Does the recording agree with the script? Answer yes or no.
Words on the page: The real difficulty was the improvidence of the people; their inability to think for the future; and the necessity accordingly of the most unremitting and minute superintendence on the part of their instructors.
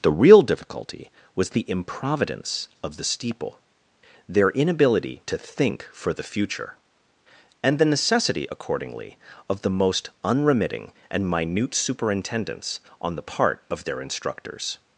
no